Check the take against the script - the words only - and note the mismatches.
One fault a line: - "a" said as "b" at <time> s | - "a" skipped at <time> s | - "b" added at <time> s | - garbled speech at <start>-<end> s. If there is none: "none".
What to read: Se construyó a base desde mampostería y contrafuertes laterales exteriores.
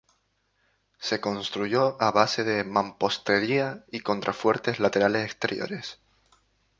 - "desde" said as "de" at 2.4 s